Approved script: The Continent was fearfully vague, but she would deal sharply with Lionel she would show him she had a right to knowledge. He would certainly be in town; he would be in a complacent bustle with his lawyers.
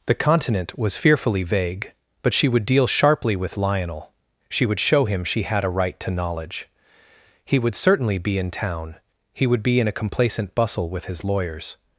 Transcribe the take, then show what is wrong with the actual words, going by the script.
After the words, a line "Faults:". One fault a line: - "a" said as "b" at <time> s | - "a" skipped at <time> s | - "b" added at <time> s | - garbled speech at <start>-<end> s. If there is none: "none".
The Continent was fearfully vague, but she would deal sharply with Lionel she would show him she had a right to knowledge. He would certainly be in town; he would be in a complacent bustle with his lawyers.
Faults:
none